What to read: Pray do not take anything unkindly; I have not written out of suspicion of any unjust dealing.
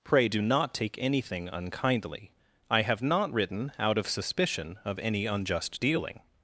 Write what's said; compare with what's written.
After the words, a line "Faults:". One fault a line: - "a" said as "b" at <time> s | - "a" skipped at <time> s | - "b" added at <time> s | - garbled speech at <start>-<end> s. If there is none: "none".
Pray do not take anything unkindly; I have not written out of suspicion of any unjust dealing.
Faults:
none